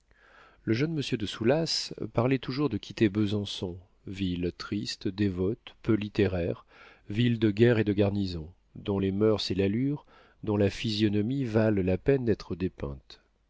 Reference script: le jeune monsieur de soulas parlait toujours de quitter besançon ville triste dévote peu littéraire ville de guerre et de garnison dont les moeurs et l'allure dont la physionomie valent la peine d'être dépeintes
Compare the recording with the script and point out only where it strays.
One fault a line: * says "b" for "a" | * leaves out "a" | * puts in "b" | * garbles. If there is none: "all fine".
all fine